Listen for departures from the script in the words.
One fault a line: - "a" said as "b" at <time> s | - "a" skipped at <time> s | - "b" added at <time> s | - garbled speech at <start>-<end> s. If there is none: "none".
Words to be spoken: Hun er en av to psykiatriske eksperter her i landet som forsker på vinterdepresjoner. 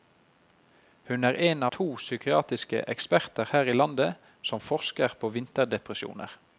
- "av" skipped at 1.6 s